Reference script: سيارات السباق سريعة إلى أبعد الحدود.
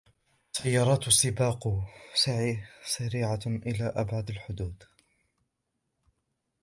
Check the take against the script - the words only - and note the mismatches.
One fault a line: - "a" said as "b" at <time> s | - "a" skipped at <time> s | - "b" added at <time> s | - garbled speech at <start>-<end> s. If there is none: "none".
none